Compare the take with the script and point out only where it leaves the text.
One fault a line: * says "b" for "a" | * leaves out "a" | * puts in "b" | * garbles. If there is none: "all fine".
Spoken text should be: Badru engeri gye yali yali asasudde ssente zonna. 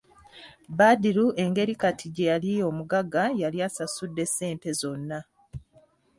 * puts in "kati"
* puts in "omugagga"